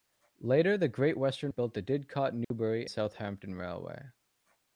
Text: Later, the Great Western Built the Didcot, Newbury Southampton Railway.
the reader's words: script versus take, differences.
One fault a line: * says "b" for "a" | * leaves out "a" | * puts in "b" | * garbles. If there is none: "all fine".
all fine